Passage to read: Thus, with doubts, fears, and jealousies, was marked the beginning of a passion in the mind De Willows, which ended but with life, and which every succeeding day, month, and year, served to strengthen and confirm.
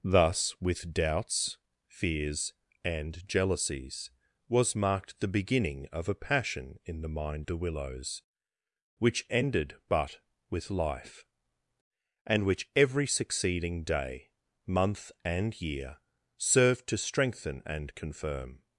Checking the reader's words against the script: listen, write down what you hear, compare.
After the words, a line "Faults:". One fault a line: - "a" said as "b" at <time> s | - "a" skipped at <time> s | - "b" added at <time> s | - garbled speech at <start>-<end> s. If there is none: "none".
Thus, with doubts, fears, and jealousies, was marked the beginning of a passion in the mind De Willows, which ended but with life, and which every succeeding day, month, and year, served to strengthen and confirm.
Faults:
none